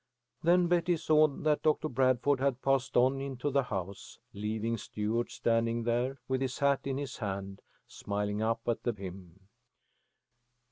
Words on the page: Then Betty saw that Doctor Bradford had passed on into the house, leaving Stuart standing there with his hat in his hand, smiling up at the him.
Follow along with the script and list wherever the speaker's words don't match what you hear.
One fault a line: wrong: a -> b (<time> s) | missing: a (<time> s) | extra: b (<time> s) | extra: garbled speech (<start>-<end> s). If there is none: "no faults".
no faults